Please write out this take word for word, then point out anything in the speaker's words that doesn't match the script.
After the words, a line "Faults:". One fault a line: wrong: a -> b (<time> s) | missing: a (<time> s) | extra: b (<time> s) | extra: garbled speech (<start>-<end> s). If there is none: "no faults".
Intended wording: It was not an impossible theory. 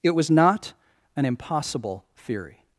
It was not an impossible theory.
Faults:
no faults